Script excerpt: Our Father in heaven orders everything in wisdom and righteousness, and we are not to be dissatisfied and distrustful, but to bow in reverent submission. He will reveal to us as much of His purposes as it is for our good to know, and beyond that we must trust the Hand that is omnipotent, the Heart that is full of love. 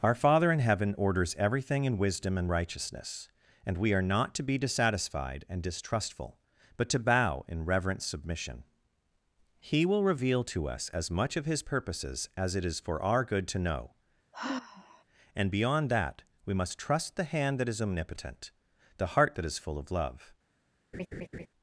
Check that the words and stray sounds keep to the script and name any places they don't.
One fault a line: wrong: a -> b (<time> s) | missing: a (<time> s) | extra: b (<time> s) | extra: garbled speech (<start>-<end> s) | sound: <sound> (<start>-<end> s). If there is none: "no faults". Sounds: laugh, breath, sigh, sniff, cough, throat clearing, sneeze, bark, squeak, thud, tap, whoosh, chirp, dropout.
sound: sigh (14.3-15.0 s)
sound: laugh (20.9-21.5 s)